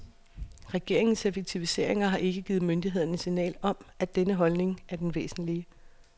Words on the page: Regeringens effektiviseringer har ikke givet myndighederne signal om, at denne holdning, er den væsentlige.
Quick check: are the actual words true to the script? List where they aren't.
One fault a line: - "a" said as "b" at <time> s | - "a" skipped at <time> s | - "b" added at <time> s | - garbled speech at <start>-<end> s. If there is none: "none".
none